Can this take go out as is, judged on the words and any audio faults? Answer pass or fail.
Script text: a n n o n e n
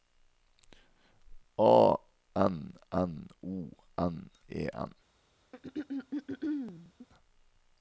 fail